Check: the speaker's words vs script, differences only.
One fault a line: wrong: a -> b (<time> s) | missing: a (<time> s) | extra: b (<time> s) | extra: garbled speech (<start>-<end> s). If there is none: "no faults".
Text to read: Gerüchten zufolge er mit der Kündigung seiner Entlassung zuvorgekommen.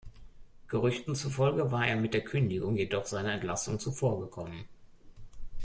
extra: war (1.7 s)
extra: jedoch (2.8 s)